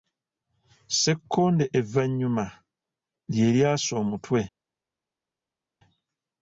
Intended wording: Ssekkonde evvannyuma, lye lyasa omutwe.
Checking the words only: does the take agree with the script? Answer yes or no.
yes